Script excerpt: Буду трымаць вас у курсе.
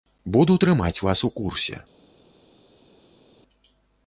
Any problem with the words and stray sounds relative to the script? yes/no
no